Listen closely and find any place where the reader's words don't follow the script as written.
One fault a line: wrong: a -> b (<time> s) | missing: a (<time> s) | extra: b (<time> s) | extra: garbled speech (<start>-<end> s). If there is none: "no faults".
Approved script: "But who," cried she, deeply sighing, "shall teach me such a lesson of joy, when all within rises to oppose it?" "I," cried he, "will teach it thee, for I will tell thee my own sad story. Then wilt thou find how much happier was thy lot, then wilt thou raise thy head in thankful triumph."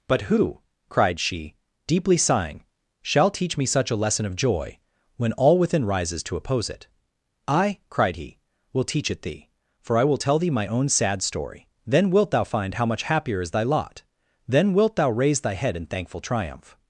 wrong: was -> is (13.4 s)